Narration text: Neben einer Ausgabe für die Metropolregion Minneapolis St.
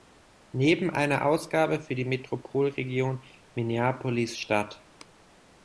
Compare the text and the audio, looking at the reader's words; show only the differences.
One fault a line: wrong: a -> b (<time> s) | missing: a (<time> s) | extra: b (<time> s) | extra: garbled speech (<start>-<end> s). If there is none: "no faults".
no faults